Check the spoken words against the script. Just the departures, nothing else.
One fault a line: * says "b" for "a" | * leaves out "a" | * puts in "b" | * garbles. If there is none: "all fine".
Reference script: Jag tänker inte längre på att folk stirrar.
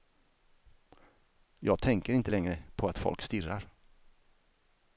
all fine